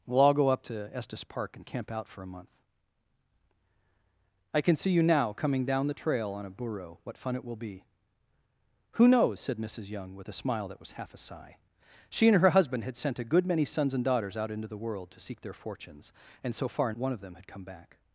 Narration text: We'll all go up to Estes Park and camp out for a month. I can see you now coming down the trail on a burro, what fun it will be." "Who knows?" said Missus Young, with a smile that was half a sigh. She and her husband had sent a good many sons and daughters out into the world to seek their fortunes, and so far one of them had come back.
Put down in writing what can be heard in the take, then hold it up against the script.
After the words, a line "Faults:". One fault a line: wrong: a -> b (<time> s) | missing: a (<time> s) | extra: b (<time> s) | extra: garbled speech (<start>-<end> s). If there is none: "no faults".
We'll all go up to Estes Park and camp out for a month. I can see you now coming down the trail on a burro, what fun it will be." "Who knows?" said Missus Young, with a smile that was half a sigh. She and her husband had sent a good many sons and daughters out into the world to seek their fortunes, and so far one of them had come back.
Faults:
no faults